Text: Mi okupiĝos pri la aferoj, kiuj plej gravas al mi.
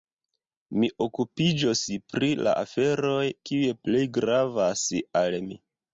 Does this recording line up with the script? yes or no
yes